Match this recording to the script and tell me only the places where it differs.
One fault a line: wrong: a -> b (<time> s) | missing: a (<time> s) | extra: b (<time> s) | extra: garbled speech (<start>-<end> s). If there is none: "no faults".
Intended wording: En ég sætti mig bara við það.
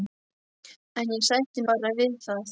missing: mig (1.6 s)